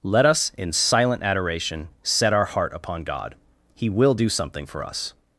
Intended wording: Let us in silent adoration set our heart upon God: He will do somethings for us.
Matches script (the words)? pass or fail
fail